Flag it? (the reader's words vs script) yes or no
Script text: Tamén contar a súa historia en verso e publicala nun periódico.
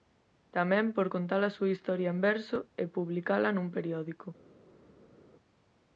yes